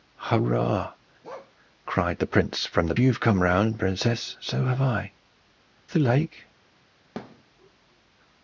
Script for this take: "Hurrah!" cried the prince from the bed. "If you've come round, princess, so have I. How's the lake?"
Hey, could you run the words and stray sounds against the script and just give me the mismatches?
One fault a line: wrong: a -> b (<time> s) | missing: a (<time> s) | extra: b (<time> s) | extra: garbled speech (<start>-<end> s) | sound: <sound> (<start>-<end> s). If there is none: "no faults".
sound: bark (1.2-1.5 s)
missing: bed If (3.0 s)
missing: How's (5.1 s)
sound: thud (7.2-7.4 s)